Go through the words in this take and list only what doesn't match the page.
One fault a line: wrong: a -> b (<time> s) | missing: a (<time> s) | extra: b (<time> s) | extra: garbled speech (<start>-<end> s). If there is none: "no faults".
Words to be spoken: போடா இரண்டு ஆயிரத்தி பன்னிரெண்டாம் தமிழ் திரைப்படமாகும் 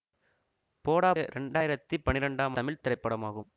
no faults